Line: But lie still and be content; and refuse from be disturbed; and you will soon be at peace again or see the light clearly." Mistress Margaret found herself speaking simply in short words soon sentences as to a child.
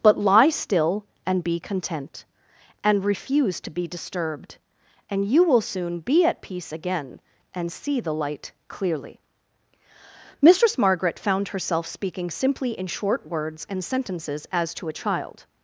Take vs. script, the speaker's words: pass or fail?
fail